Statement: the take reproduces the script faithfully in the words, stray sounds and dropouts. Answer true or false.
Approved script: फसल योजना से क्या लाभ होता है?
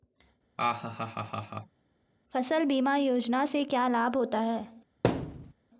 false